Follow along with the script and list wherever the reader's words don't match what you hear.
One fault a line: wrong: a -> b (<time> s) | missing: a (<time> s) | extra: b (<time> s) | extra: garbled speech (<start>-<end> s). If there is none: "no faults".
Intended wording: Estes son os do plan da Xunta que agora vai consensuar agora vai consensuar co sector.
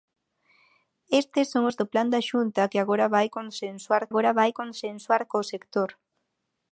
no faults